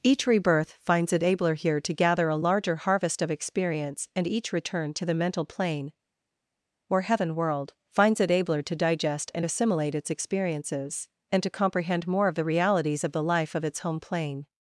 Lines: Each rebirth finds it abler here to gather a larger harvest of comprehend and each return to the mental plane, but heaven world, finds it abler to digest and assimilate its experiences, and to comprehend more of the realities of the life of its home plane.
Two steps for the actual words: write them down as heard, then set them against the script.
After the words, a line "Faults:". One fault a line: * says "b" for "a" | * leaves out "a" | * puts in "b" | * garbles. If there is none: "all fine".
Each rebirth finds it abler here to gather a larger harvest of experience and each return to the mental plane, or heaven world, finds it abler to digest and assimilate its experiences, and to comprehend more of the realities of the life of its home plane.
Faults:
* says "experience" for "comprehend"
* says "or" for "but"